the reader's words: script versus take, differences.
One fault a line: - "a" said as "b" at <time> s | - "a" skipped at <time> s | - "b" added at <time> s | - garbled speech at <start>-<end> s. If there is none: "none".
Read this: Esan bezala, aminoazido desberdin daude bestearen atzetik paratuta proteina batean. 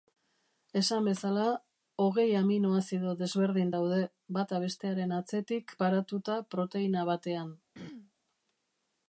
- "hogei" added at 2.0 s
- "bata" added at 4.4 s